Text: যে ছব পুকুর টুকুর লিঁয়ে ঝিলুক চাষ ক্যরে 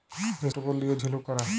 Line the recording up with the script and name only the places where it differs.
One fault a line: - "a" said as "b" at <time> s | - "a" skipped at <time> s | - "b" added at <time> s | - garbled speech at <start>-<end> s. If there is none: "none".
- "ছব পুকুর" skipped at 0.5 s
- "চাষ" skipped at 1.2 s